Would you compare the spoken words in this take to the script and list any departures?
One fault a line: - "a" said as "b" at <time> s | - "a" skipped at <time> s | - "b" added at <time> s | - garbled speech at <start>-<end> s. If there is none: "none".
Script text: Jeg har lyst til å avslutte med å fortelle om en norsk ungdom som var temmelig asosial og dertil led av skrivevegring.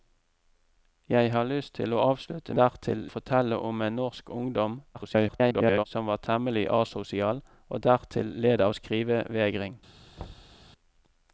- "med" said as "dertil" at 2.6 s
- garbled speech at 4.9-5.8 s